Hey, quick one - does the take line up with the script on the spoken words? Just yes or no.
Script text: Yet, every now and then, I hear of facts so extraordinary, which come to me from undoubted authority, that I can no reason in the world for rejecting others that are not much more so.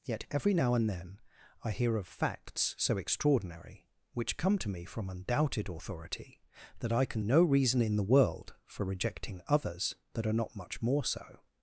yes